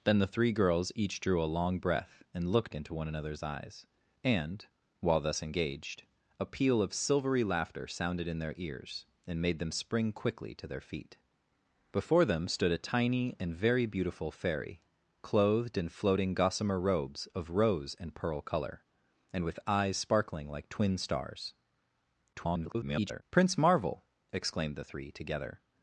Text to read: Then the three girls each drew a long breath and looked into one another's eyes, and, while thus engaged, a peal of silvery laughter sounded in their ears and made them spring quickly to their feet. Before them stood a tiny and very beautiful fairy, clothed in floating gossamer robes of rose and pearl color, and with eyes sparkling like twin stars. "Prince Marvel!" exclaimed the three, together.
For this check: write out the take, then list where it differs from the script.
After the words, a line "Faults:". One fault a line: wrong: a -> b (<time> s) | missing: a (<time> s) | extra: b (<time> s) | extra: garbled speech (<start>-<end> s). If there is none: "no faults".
Then the three girls each drew a long breath and looked into one another's eyes, and, while thus engaged, a peal of silvery laughter sounded in their ears and made them spring quickly to their feet. Before them stood a tiny and very beautiful fairy, clothed in floating gossamer robes of rose and pearl color, and with eyes sparkling like twin stars. [garbled] "Prince Marvel!" exclaimed the three, together.
Faults:
extra: garbled speech (22.3-23.2 s)